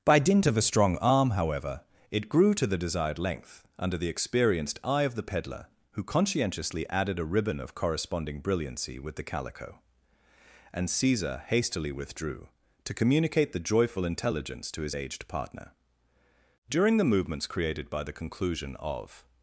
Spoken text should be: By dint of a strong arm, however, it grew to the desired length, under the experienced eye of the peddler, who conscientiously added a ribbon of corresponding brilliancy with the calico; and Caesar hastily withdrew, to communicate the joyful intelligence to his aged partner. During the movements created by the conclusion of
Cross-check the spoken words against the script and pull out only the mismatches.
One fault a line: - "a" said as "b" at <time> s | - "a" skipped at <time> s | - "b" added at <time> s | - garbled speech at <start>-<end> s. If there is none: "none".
none